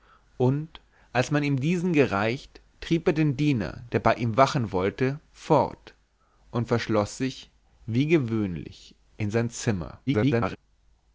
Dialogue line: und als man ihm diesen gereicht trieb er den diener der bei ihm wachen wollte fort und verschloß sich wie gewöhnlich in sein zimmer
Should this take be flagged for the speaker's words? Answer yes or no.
yes